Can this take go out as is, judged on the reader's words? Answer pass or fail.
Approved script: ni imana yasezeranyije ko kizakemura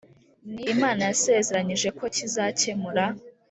pass